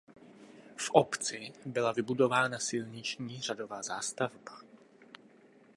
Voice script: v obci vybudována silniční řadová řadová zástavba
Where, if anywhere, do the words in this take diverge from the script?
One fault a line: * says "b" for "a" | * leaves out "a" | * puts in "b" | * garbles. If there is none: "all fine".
* puts in "byla"
* leaves out "řadová"